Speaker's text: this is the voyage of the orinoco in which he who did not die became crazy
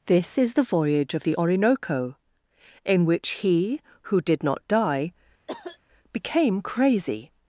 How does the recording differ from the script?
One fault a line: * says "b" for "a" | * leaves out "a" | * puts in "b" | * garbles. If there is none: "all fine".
all fine